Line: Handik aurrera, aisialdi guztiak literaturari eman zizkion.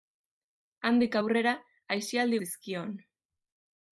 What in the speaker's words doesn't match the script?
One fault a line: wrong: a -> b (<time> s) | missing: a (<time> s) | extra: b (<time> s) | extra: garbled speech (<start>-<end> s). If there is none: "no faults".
missing: guztiak literaturari eman (2.4 s)